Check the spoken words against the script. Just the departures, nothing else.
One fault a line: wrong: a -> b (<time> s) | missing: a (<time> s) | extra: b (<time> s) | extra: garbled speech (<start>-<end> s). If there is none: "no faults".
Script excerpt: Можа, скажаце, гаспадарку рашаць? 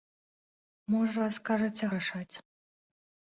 missing: гаспадарку (1.8 s)